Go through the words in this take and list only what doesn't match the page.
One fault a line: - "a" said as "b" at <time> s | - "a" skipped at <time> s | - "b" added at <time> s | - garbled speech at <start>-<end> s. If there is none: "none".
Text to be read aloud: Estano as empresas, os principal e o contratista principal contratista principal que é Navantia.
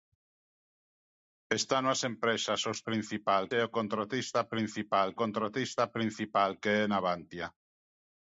none